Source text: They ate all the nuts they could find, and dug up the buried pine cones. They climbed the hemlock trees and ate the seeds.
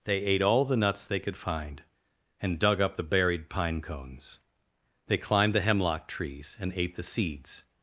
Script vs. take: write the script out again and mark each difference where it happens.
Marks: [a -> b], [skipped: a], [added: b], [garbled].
They ate all the nuts they could find, and dug up the buried pine cones. They climbed the hemlock trees and ate the seeds.